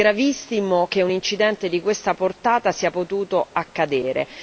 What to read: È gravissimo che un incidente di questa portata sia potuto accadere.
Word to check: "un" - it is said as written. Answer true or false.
true